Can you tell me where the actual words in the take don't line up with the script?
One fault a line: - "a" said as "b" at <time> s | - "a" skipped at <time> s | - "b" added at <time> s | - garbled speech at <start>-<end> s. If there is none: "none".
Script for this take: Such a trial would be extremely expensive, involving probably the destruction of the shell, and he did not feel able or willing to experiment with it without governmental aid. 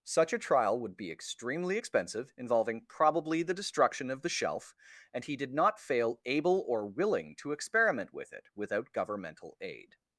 - "shell" said as "shelf" at 4.3 s
- "feel" said as "fail" at 5.8 s